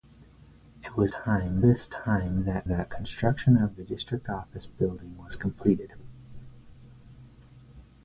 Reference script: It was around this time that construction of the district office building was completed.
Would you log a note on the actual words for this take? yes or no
yes